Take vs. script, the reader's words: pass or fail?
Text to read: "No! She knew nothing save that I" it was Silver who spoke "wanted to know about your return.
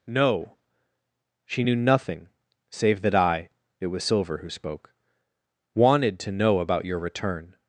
pass